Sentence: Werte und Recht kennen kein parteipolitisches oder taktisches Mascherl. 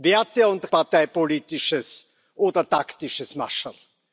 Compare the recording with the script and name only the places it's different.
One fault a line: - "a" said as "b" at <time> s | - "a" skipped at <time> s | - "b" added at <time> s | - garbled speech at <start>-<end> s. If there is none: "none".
- "Recht kennen kein" skipped at 0.7 s